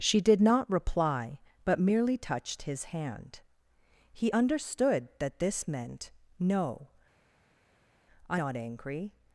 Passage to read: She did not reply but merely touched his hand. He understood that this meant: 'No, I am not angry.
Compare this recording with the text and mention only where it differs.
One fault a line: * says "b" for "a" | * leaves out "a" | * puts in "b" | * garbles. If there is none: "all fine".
* leaves out "am"